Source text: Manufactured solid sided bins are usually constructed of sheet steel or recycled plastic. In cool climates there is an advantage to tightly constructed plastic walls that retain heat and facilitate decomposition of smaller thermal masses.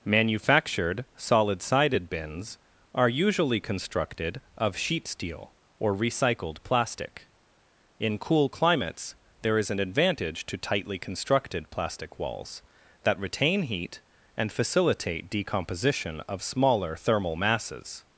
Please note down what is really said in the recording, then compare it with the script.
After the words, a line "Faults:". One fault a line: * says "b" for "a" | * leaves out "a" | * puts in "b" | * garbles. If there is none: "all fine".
Manufactured solid sided bins are usually constructed of sheet steel or recycled plastic. In cool climates there is an advantage to tightly constructed plastic walls that retain heat and facilitate decomposition of smaller thermal masses.
Faults:
all fine